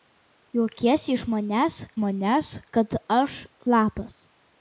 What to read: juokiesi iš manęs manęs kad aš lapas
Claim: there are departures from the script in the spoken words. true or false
false